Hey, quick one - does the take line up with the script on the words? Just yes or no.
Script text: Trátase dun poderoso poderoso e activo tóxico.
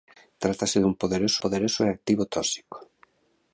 yes